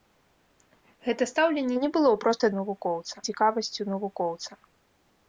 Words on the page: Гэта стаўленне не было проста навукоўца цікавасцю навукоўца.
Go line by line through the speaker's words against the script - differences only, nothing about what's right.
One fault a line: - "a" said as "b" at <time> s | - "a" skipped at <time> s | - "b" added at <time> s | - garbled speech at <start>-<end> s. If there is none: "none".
none